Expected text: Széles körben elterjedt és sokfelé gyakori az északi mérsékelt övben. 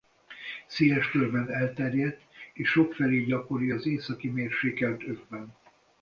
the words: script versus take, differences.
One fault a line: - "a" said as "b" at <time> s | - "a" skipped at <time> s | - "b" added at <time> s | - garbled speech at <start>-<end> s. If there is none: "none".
none